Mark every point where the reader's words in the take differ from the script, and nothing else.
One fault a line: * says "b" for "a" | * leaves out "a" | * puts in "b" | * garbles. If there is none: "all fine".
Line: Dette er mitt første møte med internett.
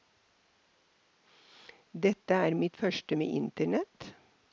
* leaves out "møte"